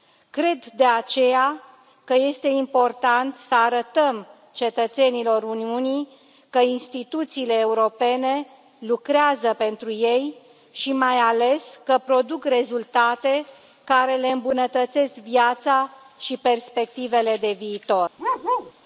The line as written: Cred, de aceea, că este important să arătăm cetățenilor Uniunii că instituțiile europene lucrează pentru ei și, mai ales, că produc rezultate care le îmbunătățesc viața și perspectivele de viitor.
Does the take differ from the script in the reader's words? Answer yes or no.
no